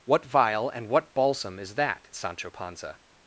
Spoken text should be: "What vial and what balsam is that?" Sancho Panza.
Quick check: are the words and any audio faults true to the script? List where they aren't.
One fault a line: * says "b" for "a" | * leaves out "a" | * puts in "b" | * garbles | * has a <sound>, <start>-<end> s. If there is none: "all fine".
all fine